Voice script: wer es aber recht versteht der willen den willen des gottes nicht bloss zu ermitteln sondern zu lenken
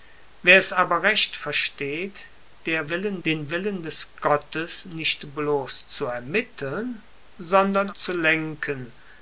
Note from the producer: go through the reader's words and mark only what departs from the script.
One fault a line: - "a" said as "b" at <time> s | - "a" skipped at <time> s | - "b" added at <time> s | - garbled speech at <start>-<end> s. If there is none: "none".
none